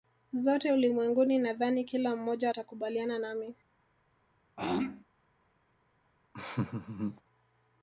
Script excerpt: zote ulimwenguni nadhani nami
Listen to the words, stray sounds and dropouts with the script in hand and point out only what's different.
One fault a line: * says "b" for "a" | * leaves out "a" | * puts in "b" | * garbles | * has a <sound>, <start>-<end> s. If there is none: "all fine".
* puts in "kila mmoja atakubaliana"
* has a throat clearing, 4.6-5.0 s
* has a laugh, 6.3-7.2 s